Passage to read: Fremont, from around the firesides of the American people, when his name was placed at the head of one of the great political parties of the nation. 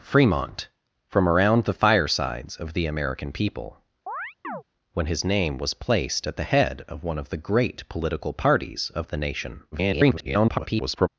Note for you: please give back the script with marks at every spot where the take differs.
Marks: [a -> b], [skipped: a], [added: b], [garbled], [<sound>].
Fremont, from around the firesides of the American people, [chirp] when his name was placed at the head of one of the great political parties of the nation. [garbled]